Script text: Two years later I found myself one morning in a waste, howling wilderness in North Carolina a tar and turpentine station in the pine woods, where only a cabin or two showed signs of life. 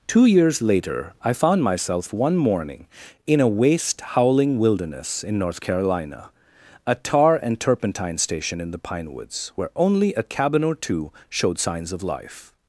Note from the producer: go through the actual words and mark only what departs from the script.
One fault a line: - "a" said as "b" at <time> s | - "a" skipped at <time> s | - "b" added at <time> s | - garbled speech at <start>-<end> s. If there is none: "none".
none